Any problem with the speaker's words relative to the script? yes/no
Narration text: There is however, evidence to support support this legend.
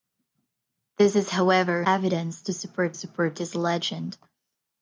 no